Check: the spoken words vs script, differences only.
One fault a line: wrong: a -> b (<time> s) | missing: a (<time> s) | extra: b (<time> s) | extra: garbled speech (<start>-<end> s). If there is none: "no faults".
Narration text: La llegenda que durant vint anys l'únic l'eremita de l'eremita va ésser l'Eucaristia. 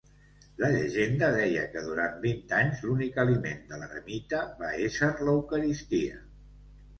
extra: deia (1.4 s)
wrong: l'eremita -> aliment (3.2 s)